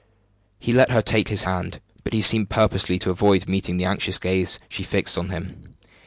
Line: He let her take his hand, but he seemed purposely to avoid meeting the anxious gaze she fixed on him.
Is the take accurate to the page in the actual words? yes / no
yes